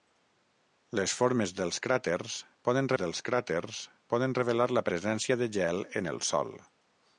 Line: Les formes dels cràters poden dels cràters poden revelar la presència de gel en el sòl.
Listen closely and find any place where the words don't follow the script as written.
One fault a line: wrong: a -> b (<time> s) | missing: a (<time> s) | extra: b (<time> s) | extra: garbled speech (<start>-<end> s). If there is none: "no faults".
no faults